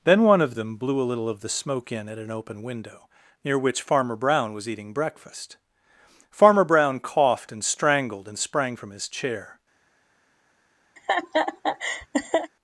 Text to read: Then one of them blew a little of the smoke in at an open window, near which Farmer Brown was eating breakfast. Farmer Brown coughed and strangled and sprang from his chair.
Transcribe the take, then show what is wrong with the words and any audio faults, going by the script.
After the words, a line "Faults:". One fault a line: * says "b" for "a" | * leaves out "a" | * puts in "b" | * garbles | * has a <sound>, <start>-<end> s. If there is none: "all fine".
Then one of them blew a little of the smoke in at an open window, near which Farmer Brown was eating breakfast. Farmer Brown coughed and strangled and sprang from his chair.
Faults:
* has a laugh, 11.0-12.5 s